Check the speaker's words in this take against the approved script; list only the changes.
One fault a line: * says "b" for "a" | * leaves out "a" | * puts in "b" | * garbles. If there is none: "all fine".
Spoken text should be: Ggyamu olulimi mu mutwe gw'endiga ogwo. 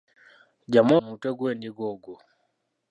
* leaves out "olulimi"